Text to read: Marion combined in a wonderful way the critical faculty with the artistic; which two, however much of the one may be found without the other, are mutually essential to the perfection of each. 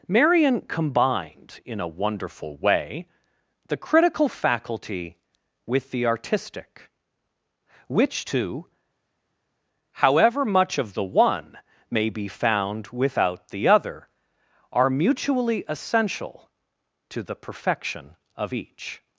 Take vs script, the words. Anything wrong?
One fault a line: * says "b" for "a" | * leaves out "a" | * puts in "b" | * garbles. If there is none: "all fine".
all fine